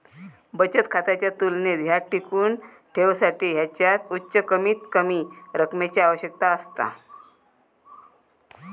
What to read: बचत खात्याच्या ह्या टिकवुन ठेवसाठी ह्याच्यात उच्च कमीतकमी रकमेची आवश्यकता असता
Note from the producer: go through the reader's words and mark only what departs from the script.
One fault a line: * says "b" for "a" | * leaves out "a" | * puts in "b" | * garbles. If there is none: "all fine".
* puts in "तुलनेत"